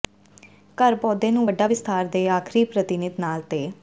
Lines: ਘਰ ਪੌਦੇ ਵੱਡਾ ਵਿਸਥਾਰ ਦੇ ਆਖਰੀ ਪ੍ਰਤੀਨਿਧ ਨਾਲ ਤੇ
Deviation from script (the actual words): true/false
true